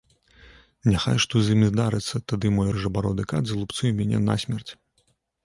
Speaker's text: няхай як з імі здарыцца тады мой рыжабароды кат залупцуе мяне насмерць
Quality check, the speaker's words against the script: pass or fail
fail